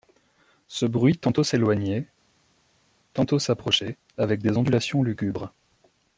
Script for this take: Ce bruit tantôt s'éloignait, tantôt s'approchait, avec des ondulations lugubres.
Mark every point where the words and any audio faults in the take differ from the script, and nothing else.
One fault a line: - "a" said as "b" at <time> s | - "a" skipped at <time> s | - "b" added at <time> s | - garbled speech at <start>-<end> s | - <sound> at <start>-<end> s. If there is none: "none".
none